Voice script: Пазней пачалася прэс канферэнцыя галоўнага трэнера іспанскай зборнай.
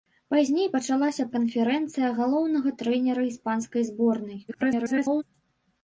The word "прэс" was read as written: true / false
false